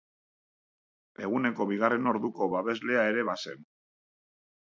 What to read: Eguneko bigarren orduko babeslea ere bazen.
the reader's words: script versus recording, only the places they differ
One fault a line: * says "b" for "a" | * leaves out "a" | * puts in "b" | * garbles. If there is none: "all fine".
all fine